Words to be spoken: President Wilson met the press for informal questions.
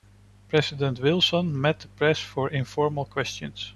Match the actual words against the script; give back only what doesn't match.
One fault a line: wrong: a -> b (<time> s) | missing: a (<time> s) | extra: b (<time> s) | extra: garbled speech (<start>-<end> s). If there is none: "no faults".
no faults